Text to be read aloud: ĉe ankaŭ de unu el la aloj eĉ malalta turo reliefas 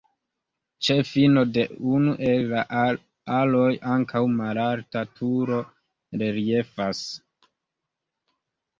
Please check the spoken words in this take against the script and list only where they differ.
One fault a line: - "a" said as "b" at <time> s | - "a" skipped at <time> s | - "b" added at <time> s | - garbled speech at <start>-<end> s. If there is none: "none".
- "ankaŭ" said as "fino" at 1.1 s
- "eĉ" said as "ankaŭ" at 4.0 s